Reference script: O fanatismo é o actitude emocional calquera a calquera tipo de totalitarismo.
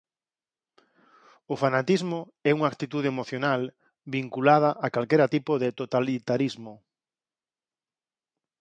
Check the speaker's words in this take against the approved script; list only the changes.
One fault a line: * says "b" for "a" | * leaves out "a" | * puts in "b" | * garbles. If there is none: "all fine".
* says "unha" for "o"
* says "vinculada" for "calquera"